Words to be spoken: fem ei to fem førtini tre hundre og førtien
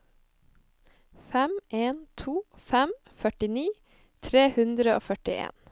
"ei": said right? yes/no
no